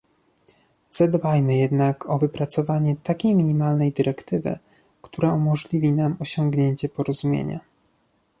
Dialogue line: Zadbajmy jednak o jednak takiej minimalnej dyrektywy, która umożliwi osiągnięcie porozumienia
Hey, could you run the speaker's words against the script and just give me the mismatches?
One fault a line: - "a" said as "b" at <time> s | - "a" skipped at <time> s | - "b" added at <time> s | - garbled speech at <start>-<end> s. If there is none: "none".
- "jednak" said as "wypracowanie" at 2.2 s
- "nam" added at 5.9 s